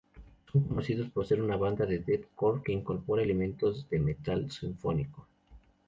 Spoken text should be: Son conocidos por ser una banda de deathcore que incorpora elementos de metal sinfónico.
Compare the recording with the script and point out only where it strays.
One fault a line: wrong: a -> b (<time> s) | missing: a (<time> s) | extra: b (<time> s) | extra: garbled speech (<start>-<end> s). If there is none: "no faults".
no faults